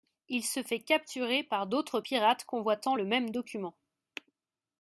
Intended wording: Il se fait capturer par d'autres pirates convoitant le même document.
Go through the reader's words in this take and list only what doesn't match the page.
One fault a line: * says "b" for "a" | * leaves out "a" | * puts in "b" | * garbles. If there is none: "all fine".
all fine